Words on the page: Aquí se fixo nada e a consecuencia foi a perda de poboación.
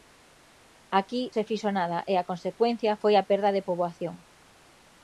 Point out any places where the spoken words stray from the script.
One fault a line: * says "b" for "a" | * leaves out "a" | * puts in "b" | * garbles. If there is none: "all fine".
all fine